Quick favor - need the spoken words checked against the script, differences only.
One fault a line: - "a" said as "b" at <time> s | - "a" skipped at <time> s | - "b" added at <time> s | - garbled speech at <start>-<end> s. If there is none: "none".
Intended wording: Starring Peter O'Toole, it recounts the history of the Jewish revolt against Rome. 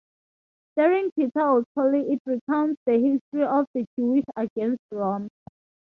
- "revolt" skipped at 4.2 s